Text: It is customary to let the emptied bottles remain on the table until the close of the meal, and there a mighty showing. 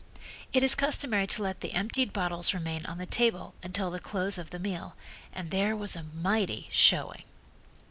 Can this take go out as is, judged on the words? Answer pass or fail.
fail